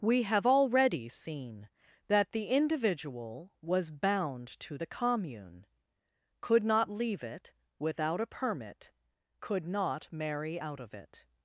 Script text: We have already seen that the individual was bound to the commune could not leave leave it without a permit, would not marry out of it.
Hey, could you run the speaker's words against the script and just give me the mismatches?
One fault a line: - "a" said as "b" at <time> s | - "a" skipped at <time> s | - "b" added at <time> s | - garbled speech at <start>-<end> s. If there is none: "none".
- "leave" skipped at 7.2 s
- "would" said as "could" at 9.4 s